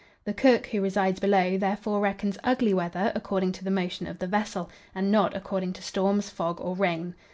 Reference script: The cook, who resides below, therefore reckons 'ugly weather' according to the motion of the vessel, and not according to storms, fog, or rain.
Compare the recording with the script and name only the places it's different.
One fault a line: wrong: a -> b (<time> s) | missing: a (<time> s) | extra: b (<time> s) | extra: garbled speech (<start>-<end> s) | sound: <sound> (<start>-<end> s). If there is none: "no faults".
no faults